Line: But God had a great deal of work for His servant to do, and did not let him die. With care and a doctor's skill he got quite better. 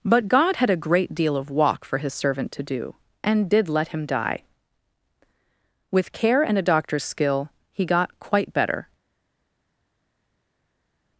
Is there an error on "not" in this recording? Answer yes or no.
yes